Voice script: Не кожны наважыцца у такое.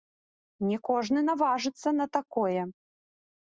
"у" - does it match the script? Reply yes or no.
no